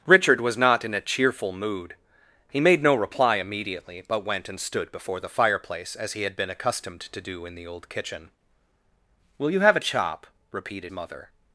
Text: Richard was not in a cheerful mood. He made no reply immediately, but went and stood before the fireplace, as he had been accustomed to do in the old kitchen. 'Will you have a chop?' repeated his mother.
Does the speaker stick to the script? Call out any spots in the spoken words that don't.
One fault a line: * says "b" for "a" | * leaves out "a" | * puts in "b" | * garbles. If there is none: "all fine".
* leaves out "his"